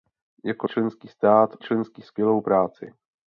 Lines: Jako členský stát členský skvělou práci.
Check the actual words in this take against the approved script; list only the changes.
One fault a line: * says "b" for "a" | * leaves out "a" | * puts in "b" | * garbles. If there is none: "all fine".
all fine